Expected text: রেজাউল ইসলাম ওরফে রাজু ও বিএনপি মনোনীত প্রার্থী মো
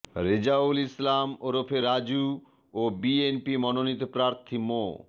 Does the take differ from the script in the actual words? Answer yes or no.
no